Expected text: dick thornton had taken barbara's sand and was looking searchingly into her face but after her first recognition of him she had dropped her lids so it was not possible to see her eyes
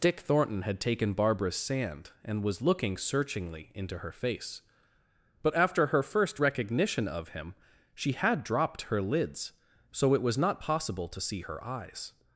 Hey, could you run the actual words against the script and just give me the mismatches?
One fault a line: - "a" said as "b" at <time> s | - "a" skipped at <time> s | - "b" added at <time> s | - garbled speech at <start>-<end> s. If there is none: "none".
none